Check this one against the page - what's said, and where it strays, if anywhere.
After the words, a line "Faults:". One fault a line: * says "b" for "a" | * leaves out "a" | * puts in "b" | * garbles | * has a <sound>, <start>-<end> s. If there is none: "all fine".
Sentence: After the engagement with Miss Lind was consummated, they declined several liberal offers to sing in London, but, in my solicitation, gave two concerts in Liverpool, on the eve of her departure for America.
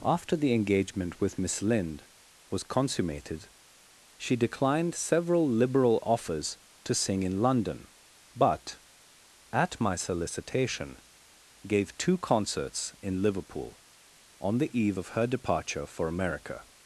After the engagement with Miss Lind was consummated, she declined several liberal offers to sing in London, but, at my solicitation, gave two concerts in Liverpool, on the eve of her departure for America.
Faults:
* says "she" for "they"
* says "at" for "in"